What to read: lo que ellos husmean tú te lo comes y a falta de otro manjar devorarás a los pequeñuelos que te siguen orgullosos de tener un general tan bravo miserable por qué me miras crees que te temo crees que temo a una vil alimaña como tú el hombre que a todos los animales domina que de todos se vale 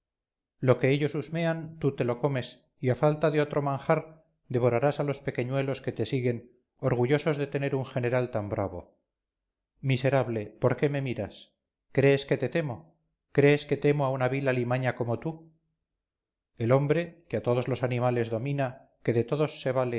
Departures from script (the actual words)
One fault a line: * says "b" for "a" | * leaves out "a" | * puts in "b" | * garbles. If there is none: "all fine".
all fine